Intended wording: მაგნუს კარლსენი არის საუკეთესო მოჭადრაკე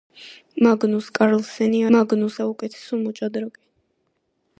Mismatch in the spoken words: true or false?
true